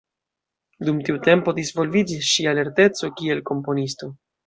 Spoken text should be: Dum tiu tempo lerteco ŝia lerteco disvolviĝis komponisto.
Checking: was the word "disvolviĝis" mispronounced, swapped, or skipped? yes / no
yes